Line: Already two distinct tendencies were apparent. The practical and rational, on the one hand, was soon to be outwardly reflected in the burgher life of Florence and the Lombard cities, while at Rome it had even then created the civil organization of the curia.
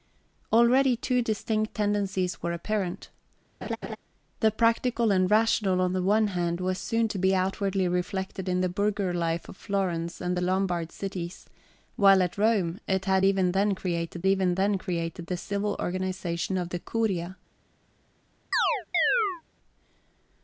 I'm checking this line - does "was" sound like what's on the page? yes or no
yes